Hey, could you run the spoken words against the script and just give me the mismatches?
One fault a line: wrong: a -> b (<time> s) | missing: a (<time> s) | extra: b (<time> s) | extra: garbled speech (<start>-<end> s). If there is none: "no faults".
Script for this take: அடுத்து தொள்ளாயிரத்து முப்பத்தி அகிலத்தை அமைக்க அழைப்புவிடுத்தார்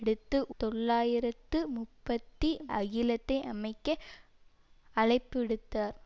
no faults